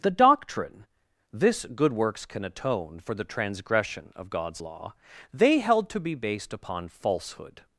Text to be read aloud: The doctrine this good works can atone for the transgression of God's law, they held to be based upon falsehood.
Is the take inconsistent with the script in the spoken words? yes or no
no